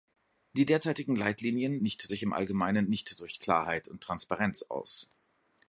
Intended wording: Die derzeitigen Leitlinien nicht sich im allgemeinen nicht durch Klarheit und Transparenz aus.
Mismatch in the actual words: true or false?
false